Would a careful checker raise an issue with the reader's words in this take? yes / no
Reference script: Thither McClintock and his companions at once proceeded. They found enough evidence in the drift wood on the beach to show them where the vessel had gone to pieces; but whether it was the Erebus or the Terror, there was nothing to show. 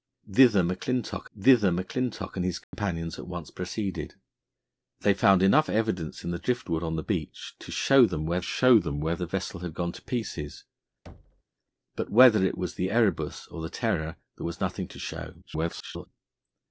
yes